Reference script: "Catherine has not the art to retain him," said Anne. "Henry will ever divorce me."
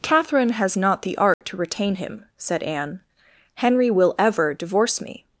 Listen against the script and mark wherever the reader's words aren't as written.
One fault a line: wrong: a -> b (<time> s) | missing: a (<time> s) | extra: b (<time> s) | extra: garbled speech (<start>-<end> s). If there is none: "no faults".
no faults